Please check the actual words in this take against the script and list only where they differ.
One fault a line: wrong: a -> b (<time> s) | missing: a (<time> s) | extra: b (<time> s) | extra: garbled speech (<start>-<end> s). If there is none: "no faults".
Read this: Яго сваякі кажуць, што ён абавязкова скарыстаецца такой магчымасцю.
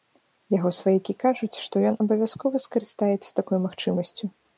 no faults